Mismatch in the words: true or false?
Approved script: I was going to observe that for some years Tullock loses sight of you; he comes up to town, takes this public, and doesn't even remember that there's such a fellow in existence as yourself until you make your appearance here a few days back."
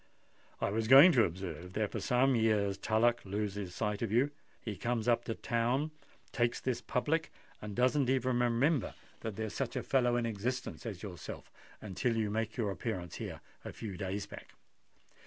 false